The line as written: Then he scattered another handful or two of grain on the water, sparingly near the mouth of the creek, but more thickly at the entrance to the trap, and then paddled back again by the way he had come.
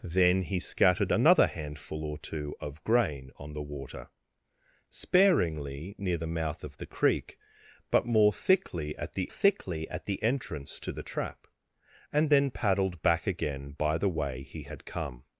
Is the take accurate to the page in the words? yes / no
no